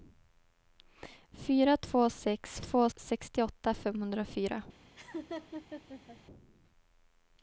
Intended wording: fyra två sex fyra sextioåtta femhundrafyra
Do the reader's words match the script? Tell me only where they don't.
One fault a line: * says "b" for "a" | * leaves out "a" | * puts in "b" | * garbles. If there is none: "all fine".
* says "två" for "fyra"